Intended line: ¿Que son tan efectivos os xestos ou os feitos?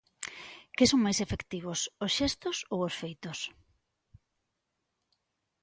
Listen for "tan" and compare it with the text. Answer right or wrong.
wrong